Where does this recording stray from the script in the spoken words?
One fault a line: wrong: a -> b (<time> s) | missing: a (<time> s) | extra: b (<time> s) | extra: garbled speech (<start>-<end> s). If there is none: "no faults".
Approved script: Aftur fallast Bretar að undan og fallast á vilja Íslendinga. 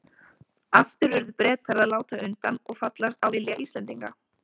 wrong: fallast -> urðu (1.2 s)
extra: láta (1.9 s)